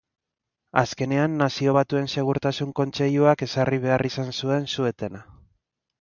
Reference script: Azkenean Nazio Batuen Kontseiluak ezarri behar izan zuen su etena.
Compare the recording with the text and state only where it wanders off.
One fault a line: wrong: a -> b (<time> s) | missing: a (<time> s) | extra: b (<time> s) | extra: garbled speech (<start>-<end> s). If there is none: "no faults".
extra: Segurtasun (2.1 s)